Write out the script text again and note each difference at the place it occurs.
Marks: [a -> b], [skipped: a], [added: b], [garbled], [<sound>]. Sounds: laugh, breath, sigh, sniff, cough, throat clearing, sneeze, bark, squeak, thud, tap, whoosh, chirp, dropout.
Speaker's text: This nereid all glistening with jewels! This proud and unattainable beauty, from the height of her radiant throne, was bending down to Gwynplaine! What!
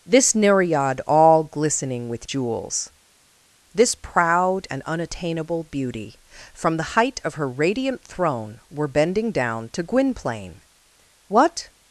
This nereid all glistening with jewels! This proud and unattainable beauty, from the height of her radiant throne, [was -> were] bending down to Gwynplaine! What!